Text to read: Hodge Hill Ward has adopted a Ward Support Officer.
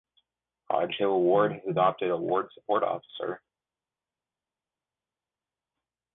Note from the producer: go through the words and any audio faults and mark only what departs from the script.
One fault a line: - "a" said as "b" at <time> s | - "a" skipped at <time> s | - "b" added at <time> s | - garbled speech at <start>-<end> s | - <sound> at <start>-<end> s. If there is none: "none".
none